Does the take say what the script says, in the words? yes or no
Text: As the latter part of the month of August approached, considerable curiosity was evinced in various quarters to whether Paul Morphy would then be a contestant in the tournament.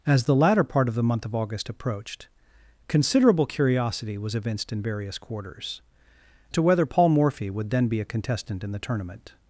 yes